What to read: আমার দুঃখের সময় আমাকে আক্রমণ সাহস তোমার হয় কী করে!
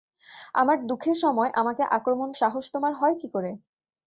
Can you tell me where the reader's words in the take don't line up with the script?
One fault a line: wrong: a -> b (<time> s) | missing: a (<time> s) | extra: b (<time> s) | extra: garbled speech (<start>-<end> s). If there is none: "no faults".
no faults